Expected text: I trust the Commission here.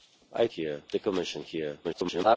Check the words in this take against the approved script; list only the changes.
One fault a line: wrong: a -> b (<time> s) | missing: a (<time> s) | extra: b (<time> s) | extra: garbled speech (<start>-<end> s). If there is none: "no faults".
wrong: trust -> here (0.5 s)
extra: garbled speech (1.8-2.4 s)